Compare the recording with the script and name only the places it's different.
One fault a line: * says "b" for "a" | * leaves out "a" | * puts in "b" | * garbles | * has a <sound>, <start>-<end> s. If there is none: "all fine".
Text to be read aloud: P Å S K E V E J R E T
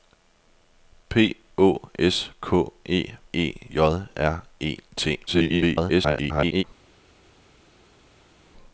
* leaves out "V"
* garbles